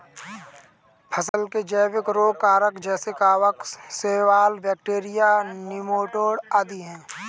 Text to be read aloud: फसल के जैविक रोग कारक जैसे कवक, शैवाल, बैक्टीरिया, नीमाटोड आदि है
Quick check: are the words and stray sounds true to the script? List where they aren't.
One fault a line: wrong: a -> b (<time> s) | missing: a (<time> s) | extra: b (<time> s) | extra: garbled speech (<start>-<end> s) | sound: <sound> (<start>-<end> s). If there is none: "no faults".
sound: dropout (1.3-1.3 s)